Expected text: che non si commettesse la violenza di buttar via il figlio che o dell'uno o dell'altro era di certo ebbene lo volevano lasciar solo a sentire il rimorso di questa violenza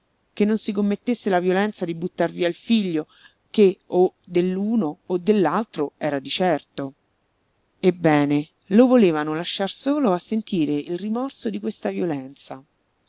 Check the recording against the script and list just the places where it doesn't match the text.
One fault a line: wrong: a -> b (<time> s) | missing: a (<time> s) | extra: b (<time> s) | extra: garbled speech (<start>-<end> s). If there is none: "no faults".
no faults